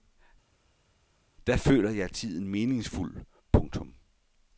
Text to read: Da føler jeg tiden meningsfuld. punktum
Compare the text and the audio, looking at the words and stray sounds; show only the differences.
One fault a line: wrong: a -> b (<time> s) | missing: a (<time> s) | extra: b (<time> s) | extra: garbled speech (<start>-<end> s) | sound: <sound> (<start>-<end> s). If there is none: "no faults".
no faults